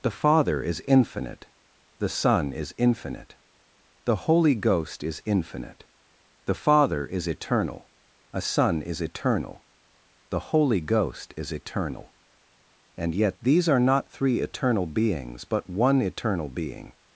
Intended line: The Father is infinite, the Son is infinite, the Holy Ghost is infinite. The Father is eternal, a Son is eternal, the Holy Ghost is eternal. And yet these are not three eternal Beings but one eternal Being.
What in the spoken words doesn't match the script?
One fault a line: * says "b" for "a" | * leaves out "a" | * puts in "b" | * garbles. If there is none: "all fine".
all fine